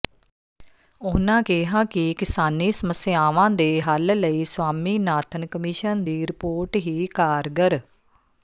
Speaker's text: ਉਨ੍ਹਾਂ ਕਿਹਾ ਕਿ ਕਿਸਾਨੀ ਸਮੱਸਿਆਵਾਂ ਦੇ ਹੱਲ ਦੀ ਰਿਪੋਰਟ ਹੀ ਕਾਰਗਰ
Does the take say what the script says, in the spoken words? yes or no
no